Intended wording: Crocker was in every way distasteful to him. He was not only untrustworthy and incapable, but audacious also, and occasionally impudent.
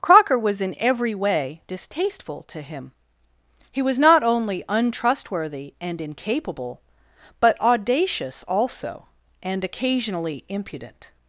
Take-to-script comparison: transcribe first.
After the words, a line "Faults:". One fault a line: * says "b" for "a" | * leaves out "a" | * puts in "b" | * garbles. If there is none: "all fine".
Crocker was in every way distasteful to him. He was not only untrustworthy and incapable, but audacious also, and occasionally impudent.
Faults:
all fine